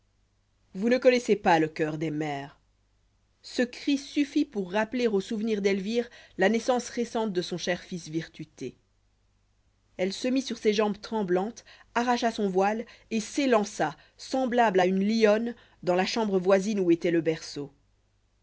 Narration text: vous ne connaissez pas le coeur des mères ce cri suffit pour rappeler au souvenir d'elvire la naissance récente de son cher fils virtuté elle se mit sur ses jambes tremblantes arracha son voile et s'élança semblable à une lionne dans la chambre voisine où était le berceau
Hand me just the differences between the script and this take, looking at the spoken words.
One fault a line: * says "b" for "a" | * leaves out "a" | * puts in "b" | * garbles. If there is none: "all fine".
all fine